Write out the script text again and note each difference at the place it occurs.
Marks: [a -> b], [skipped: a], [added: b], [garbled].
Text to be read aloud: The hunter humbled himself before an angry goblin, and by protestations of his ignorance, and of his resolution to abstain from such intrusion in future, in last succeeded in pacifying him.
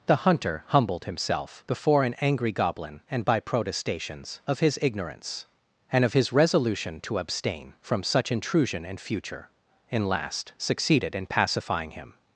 The hunter humbled himself before an angry goblin, and by protestations of his ignorance, and of his resolution to abstain from such intrusion in future, in last succeeded in pacifying him.